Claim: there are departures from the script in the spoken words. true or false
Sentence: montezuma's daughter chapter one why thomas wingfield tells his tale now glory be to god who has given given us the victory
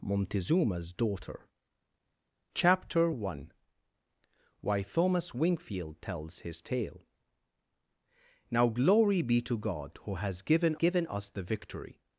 false